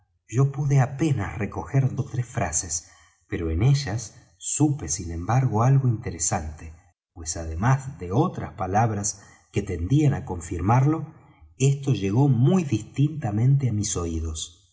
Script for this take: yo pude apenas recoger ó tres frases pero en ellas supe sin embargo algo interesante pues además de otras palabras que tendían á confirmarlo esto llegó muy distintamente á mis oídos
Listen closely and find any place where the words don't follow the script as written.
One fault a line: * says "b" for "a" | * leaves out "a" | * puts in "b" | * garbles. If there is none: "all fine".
all fine